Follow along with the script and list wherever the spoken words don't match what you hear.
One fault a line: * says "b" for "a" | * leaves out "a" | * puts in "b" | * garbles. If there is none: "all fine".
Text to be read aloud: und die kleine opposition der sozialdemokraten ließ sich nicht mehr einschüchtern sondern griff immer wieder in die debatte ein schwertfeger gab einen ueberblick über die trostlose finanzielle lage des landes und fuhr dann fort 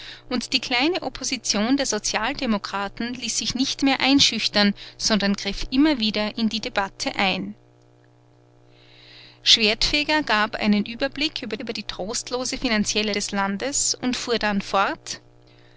* puts in "über"
* leaves out "lage"